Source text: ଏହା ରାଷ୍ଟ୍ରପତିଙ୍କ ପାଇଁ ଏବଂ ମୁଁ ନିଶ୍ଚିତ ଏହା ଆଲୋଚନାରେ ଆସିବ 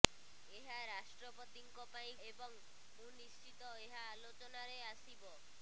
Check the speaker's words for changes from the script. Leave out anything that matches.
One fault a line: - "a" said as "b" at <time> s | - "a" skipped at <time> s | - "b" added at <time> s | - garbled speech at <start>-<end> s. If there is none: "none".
none